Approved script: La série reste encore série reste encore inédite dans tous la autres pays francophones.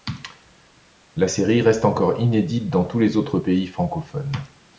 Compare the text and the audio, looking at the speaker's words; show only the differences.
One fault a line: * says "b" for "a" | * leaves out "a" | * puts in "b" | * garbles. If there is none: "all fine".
* leaves out "série reste encore"
* says "les" for "la"